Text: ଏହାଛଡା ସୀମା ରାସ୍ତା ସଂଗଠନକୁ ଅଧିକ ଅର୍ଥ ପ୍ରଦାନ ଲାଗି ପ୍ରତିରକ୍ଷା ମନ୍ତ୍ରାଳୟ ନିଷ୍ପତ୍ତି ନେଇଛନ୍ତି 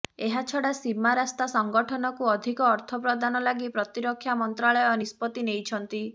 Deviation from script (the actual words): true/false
false